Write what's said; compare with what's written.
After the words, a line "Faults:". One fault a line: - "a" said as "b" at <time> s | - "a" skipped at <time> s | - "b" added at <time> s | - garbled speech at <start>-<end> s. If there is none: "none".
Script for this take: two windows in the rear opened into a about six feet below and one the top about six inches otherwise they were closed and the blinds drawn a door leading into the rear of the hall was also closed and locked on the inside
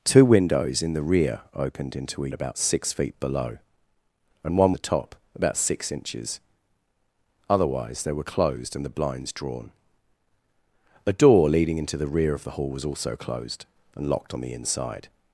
two windows in the rear opened into a about six feet below and one the top about six inches otherwise they were closed and the blinds drawn a door leading into the rear of the hall was also closed and locked on the inside
Faults:
none